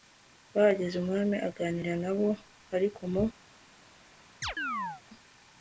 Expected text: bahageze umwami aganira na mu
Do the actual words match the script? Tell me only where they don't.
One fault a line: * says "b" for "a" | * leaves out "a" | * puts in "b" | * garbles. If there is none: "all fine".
* puts in "bo ariko"